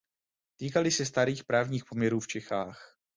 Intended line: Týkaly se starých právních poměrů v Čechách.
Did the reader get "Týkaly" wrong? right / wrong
right